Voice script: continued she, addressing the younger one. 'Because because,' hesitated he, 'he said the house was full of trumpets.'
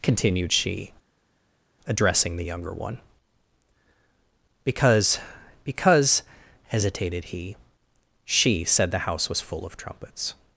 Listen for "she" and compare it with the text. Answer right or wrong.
right